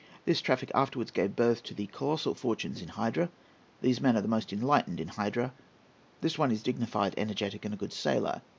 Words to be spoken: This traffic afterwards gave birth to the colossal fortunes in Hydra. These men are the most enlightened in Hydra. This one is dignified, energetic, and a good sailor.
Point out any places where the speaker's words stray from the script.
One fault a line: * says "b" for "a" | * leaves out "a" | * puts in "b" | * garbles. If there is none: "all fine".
all fine